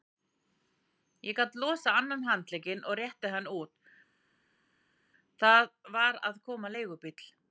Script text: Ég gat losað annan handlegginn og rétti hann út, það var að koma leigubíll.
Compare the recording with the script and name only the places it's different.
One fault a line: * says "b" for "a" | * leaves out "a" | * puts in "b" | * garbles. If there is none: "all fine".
all fine